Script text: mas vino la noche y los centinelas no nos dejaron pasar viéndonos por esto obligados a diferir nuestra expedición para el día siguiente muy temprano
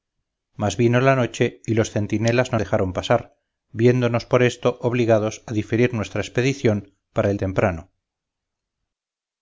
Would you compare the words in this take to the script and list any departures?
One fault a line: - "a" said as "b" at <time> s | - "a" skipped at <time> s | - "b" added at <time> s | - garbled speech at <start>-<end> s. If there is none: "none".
- "nos" skipped at 2.6 s
- "día siguiente muy" skipped at 7.4 s